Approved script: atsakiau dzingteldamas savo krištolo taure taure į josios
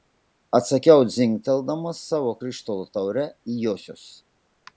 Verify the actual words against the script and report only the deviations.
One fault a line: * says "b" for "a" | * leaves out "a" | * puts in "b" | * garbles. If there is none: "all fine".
* leaves out "taure"